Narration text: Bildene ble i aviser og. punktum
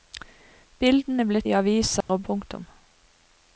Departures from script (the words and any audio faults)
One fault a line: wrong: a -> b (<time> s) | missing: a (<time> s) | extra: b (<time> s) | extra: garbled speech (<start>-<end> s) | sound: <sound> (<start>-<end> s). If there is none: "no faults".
sound: dropout (2.0-2.1 s)